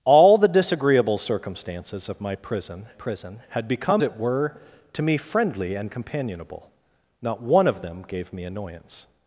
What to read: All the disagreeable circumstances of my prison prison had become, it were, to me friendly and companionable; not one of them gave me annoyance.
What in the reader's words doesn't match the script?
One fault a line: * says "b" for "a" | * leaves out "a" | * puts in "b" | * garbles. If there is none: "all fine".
all fine